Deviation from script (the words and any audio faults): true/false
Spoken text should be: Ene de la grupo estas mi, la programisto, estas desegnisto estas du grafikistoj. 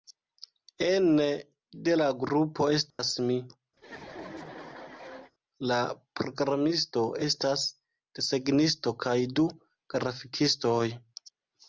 true